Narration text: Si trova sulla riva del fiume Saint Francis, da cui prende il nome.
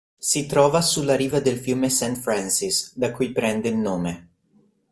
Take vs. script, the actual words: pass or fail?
pass